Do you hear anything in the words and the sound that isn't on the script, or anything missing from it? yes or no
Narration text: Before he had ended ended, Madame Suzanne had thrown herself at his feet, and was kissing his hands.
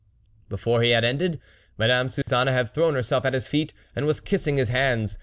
yes